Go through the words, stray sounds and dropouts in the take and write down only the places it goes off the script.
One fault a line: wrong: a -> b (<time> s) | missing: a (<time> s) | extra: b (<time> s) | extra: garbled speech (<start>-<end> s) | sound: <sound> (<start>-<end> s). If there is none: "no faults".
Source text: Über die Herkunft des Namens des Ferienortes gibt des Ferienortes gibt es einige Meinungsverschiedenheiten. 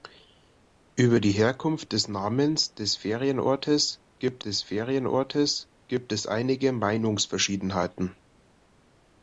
no faults